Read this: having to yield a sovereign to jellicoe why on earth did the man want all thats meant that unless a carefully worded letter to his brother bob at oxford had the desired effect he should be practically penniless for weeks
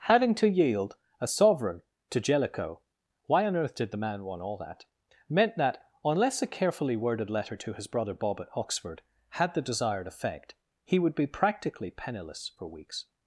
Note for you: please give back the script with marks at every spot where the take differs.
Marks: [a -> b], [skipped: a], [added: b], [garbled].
having to yield a sovereign to jellicoe why on earth did the man want all [thats -> that] meant that unless a carefully worded letter to his brother bob at oxford had the desired effect he [should -> would] be practically penniless for weeks